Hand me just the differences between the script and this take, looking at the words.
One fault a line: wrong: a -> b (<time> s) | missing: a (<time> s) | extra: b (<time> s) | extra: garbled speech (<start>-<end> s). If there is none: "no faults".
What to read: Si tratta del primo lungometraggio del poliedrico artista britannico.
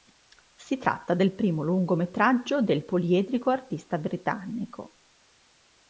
no faults